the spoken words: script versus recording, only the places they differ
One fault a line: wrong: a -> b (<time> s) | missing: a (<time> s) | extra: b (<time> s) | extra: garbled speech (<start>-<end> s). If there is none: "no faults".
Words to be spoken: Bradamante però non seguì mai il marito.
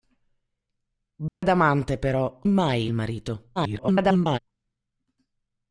missing: non seguì (2.4 s)
extra: garbled speech (3.6-4.4 s)